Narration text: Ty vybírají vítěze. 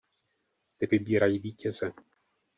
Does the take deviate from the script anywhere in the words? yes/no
no